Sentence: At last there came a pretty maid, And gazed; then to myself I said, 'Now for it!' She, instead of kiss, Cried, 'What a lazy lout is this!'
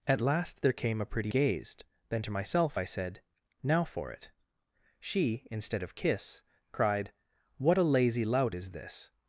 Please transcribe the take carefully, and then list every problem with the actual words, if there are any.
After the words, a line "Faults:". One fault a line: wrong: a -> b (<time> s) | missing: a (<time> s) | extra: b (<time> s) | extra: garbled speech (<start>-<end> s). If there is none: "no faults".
At last there came a pretty gazed; then to myself I said, 'Now for it!' She, instead of kiss, Cried, 'What a lazy lout is this!'
Faults:
missing: maid And (1.3 s)